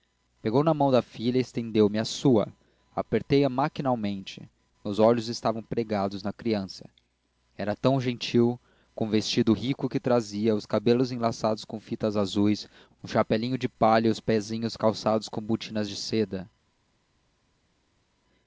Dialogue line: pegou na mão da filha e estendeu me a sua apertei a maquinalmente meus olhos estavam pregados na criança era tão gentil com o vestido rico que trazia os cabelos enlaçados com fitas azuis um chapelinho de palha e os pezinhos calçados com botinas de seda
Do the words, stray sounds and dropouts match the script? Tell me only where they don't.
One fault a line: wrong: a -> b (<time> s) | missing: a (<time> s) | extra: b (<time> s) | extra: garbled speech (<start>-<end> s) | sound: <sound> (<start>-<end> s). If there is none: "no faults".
no faults